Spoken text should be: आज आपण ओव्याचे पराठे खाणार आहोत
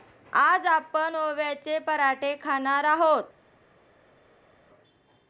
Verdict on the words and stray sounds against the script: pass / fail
pass